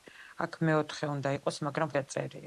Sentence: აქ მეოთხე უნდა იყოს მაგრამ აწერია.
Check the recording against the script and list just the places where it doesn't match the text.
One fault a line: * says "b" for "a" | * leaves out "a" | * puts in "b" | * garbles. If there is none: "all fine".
all fine